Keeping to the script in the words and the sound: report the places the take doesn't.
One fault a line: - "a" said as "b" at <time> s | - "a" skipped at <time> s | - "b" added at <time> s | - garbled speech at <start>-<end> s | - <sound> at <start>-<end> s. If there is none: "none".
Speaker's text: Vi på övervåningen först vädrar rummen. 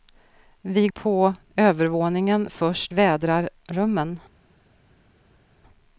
none